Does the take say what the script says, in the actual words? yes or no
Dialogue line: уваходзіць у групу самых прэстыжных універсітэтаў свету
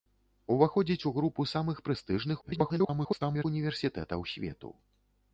no